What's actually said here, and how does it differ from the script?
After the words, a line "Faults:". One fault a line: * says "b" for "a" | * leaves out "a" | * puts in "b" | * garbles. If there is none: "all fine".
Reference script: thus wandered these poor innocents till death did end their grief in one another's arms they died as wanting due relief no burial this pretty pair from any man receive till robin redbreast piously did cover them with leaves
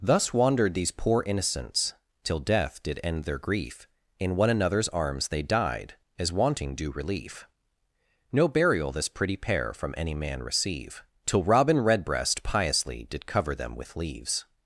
thus wandered these poor innocents till death did end their grief in one another's arms they died as wanting due relief no burial this pretty pair from any man receive till robin redbreast piously did cover them with leaves
Faults:
all fine